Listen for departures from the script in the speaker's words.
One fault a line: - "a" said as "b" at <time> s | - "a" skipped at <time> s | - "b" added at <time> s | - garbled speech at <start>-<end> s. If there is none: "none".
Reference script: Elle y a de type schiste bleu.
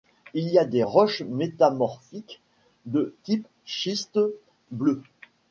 - "Elle" said as "Il" at 0.3 s
- "des roches métamorphiques" added at 0.7 s